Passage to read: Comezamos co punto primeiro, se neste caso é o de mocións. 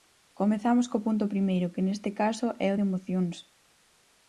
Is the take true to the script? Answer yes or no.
no